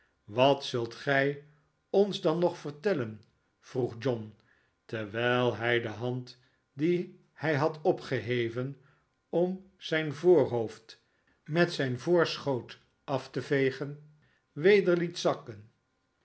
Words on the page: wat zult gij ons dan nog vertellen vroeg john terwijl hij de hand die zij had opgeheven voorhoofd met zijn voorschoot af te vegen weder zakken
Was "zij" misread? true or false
true